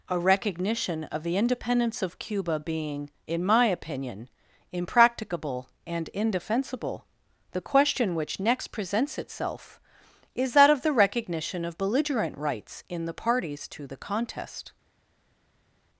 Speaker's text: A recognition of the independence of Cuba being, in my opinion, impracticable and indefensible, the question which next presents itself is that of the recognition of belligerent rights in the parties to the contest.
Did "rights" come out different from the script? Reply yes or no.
no